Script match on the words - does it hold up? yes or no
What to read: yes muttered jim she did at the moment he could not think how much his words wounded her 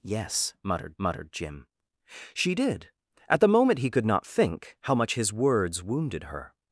no